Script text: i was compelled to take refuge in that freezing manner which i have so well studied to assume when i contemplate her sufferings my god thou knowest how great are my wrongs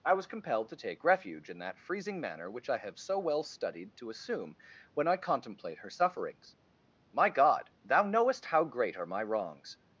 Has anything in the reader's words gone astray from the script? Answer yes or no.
no